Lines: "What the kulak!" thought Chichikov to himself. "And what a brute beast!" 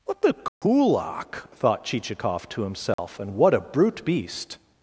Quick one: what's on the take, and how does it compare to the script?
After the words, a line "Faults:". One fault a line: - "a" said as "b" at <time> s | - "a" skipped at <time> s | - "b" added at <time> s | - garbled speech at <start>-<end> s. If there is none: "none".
"What the kulak!" thought Chichikov to himself. "And what a brute beast!"
Faults:
none